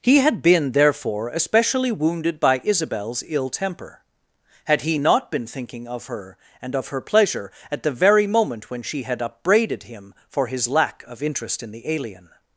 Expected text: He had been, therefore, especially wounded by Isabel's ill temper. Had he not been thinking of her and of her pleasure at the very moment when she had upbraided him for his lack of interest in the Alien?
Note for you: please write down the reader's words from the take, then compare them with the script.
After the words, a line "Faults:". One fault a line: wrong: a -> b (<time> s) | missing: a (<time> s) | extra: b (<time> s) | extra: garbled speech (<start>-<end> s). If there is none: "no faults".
He had been, therefore, especially wounded by Isabel's ill temper. Had he not been thinking of her and of her pleasure at the very moment when she had upbraided him for his lack of interest in the Alien?
Faults:
no faults